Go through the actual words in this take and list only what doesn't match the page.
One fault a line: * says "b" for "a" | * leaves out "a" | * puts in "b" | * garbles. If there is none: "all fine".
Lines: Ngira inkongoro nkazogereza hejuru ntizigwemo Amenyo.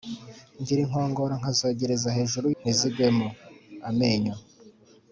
all fine